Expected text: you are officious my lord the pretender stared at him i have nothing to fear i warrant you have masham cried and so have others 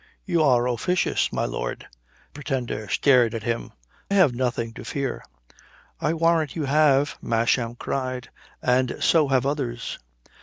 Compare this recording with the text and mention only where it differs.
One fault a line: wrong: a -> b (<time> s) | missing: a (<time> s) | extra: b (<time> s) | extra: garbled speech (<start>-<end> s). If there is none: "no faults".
missing: the (1.9 s)
missing: i (3.7 s)